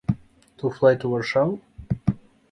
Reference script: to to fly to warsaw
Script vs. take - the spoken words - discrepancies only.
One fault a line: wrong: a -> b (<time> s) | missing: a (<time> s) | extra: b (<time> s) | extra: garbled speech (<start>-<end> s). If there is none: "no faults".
missing: to (0.7 s)